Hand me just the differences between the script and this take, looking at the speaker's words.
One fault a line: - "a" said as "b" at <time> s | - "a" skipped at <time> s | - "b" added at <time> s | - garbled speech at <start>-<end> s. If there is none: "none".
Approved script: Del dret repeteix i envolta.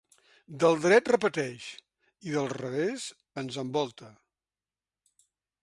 - "del revés ens" added at 2.4 s